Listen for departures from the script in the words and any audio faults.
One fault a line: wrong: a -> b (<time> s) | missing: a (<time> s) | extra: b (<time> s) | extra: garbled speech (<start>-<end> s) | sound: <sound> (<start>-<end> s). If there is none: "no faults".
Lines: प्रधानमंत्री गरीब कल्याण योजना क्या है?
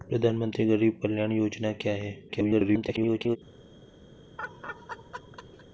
extra: garbled speech (2.3-3.4 s)
sound: laugh (4.4-5.7 s)